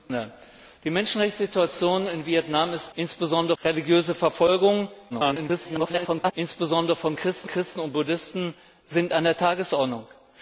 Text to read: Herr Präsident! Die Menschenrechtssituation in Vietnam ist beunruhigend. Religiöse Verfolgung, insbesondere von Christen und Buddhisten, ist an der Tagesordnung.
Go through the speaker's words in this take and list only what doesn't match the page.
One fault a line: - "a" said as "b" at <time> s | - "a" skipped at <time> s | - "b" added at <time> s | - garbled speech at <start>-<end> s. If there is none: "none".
- "beunruhigend" said as "insbesondere" at 2.9 s
- garbled speech at 5.1-6.3 s
- "Christen" added at 7.5 s